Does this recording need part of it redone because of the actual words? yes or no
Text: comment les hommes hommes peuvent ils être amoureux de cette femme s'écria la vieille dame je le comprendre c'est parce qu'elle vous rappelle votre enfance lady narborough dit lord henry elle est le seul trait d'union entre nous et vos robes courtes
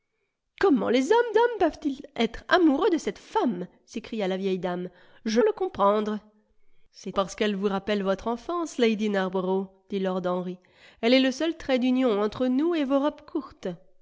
no